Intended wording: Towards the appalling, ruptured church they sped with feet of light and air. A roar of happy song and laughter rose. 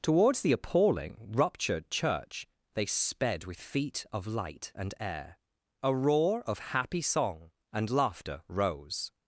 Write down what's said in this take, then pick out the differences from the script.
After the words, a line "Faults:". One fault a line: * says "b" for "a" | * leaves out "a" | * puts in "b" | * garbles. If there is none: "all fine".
Towards the appalling, ruptured church they sped with feet of light and air. A roar of happy song and laughter rose.
Faults:
all fine